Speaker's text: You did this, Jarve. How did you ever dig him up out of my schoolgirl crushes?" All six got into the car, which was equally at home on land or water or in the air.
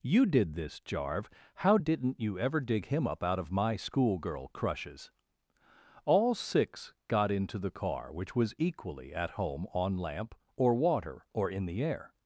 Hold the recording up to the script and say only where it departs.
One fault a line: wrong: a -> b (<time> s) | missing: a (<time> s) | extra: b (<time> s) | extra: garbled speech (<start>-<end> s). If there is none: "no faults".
wrong: did -> didn't (1.8 s)
wrong: land -> lamp (10.0 s)